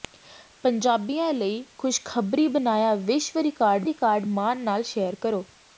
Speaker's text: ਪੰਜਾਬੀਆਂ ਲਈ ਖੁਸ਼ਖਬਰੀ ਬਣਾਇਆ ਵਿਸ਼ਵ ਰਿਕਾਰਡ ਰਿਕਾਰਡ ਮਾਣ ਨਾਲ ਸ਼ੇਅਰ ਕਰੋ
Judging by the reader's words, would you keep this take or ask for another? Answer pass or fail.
pass